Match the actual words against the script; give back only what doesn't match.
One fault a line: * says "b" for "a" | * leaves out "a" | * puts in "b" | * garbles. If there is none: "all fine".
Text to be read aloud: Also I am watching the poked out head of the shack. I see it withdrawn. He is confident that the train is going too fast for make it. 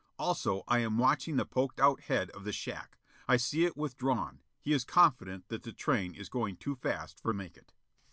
all fine